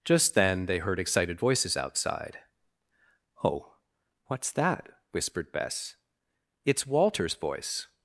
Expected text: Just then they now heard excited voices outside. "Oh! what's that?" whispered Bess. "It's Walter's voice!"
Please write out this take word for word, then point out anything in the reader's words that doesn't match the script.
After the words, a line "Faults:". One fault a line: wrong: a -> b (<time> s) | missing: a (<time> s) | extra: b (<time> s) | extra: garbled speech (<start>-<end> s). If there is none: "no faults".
Just then they heard excited voices outside. "Oh! what's that?" whispered Bess. "It's Walter's voice!"
Faults:
missing: now (0.8 s)